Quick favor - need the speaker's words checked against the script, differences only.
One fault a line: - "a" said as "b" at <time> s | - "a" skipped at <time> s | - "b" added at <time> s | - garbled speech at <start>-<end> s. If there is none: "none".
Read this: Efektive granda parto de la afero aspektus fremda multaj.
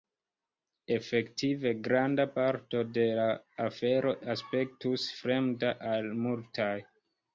- "al" added at 5.9 s